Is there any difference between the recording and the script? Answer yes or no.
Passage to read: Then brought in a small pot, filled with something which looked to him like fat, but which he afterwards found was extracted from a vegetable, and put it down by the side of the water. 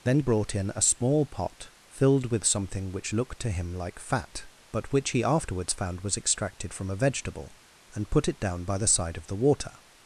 no